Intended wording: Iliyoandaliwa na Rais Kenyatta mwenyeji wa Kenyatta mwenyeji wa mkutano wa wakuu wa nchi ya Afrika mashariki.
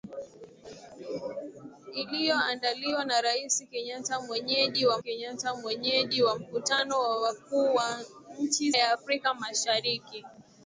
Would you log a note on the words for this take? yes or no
no